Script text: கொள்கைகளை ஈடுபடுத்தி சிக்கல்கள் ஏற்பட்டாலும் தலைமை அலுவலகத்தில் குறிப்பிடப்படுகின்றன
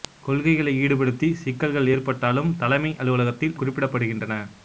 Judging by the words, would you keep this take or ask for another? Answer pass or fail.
pass